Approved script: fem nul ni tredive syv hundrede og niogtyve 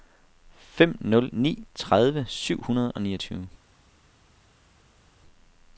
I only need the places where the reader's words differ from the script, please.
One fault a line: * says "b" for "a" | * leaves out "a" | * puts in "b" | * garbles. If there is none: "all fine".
all fine